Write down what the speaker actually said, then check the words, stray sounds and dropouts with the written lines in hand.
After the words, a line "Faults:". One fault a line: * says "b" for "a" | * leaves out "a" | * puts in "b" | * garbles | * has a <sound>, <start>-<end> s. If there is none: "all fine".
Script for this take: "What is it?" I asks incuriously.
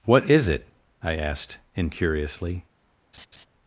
"What is it?" I asked incuriously.
Faults:
* says "asked" for "asks"
* has a laugh, 3.1-3.5 s